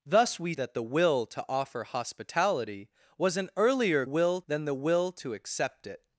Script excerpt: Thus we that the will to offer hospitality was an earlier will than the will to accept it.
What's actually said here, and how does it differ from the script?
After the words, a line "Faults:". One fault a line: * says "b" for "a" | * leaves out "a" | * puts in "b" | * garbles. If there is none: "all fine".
Thus we that the will to offer hospitality was an earlier will than the will to accept it.
Faults:
all fine